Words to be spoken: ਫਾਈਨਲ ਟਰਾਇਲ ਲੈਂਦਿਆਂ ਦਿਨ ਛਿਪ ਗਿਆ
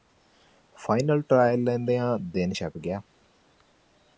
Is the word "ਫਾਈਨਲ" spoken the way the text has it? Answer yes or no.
yes